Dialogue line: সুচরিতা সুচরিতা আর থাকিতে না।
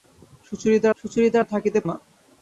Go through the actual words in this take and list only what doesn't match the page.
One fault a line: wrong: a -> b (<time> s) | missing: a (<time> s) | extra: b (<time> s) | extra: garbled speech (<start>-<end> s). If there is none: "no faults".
no faults